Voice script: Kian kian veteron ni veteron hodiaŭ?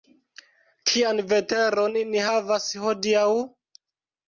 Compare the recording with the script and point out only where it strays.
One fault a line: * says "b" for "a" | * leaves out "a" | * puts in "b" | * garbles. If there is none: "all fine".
* leaves out "kian"
* says "havas" for "veteron"